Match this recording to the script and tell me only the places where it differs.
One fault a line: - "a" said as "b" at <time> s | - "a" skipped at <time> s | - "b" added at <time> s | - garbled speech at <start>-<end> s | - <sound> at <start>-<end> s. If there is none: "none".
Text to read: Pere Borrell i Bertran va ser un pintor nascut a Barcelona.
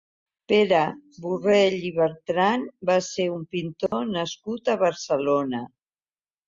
- dropout at 3.9-3.9 s